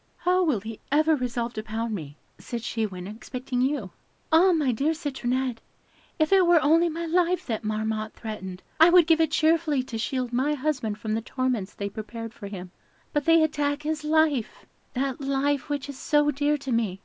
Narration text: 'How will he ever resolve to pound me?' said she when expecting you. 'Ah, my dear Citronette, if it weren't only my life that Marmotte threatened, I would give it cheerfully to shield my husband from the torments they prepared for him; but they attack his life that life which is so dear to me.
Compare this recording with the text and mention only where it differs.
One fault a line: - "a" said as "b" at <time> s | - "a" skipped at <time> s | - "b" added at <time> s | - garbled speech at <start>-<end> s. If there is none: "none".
- "weren't" said as "were" at 6.5 s